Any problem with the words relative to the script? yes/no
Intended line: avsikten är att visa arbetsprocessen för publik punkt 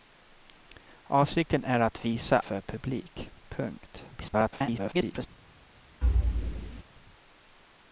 yes